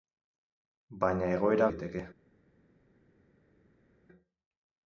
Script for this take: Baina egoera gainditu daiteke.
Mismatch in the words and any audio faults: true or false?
true